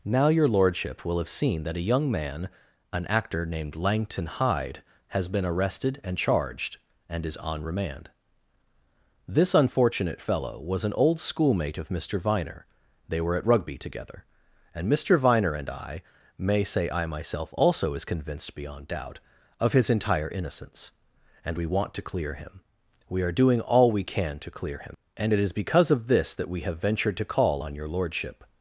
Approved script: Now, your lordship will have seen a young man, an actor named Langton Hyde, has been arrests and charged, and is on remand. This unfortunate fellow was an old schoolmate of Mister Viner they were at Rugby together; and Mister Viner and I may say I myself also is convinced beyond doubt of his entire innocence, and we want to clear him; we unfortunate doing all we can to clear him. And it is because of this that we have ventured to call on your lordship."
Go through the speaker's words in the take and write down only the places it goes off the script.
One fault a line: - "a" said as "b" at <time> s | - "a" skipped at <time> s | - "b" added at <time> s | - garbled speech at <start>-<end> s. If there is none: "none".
- "that" added at 1.6 s
- "arrests" said as "arrested" at 5.5 s
- "unfortunate" said as "are" at 23.2 s